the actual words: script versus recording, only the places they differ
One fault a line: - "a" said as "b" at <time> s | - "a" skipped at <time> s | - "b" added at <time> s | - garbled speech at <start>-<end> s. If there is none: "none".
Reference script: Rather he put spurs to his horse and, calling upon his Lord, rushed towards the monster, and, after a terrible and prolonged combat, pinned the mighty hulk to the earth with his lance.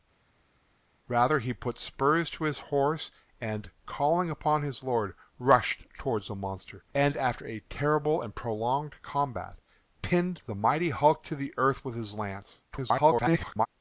- garbled speech at 12.7-13.7 s